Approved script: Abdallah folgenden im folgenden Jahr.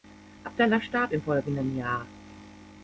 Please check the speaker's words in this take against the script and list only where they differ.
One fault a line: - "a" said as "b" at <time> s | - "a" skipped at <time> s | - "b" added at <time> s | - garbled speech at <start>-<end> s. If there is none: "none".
- "folgenden" said as "starb" at 0.8 s